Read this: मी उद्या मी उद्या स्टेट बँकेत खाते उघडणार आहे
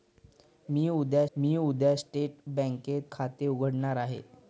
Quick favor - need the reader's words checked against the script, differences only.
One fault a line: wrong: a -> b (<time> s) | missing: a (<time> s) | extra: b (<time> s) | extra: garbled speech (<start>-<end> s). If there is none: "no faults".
no faults